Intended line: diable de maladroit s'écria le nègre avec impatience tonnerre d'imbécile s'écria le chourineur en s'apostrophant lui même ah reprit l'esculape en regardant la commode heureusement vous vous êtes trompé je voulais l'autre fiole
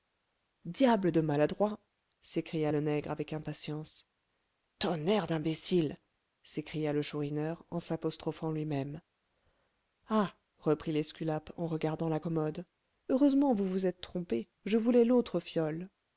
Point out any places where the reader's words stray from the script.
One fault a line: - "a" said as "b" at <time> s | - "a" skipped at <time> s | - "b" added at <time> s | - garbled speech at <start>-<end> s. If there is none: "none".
none